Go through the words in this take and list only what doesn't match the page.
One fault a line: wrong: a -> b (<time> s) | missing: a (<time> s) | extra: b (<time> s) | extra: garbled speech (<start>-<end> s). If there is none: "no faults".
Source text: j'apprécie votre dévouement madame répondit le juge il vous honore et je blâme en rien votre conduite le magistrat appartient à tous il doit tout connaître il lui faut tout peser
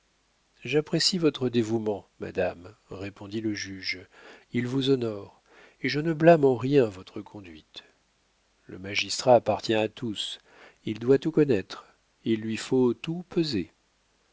extra: ne (6.0 s)